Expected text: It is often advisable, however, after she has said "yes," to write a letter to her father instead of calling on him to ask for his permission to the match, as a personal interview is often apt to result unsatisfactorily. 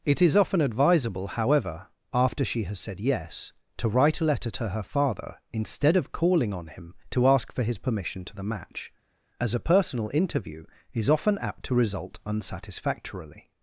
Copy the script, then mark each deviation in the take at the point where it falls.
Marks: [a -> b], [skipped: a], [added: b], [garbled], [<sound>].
It is often advisable, however, after she has said "yes," to write a letter to her father instead of calling on him to ask for his permission to the match, as a personal interview is often apt to result unsatisfactorily.